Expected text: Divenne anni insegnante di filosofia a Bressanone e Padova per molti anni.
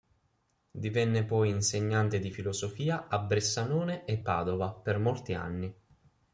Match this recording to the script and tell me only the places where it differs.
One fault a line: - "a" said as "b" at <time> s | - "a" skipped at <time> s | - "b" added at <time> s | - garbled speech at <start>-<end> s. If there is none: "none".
- "anni" said as "poi" at 1.2 s